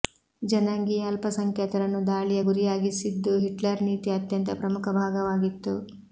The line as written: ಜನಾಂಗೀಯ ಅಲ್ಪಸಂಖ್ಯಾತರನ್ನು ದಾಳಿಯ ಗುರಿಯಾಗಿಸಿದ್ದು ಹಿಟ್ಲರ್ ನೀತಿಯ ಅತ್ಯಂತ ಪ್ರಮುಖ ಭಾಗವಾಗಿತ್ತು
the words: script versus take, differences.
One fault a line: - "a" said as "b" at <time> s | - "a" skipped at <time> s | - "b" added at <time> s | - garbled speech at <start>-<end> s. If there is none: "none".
none